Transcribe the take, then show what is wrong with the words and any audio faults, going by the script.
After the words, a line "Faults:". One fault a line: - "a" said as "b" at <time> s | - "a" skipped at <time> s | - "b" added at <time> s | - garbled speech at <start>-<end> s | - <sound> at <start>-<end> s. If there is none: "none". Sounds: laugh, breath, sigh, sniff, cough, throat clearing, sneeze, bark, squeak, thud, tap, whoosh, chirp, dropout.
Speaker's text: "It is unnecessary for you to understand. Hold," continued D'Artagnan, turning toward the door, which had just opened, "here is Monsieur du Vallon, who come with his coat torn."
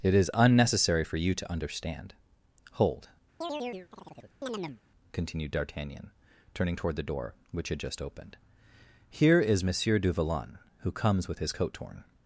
"It is unnecessary for you to understand. Hold," continued D'Artagnan, turning toward the door, which had just opened, "here is Monsieur du Vallon, who comes with his coat torn."
Faults:
- chirp at 3.4-4.8 s
- "come" said as "comes" at 10.9 s